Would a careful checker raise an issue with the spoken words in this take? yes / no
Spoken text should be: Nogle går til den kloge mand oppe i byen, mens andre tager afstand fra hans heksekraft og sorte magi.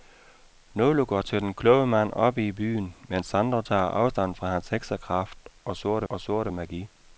yes